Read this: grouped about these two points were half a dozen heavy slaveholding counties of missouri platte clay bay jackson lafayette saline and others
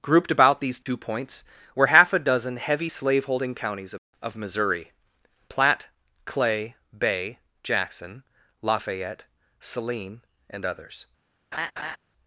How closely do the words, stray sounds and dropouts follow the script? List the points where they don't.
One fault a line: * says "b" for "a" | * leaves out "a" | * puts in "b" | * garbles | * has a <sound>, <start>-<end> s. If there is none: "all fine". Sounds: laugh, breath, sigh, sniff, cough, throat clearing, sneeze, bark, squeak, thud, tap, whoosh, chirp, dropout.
* has a dropout, 0.8-0.9 s
* puts in "of"
* has a laugh, 11.5-12.0 s